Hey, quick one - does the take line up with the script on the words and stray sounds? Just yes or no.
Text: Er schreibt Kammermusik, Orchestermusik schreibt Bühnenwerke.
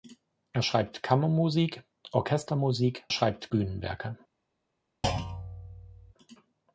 no